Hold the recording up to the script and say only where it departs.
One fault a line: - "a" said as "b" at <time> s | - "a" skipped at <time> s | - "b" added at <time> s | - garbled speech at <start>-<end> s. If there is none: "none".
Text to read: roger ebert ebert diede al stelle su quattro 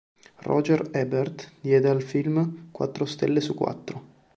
- "ebert" skipped at 1.5 s
- "film quattro" added at 2.0 s